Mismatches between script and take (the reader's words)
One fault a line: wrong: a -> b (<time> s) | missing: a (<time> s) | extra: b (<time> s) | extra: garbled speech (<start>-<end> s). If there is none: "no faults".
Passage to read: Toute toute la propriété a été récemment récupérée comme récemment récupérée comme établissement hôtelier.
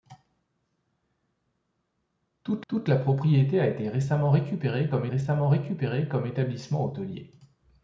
no faults